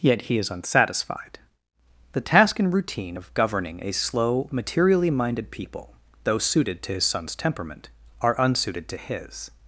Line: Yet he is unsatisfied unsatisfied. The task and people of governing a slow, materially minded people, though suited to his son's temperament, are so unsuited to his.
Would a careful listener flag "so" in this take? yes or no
yes